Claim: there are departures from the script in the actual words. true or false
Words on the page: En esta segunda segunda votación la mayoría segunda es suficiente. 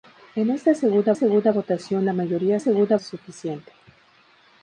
false